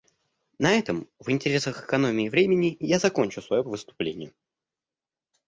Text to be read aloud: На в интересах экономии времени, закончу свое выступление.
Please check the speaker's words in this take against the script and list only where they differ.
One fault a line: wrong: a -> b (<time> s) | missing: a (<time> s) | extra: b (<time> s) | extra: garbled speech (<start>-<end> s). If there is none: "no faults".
extra: этом (0.7 s)
extra: я (2.8 s)